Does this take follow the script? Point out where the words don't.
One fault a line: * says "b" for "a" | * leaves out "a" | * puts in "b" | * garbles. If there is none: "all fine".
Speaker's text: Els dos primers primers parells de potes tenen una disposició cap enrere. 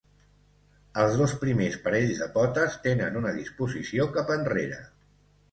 * leaves out "primers"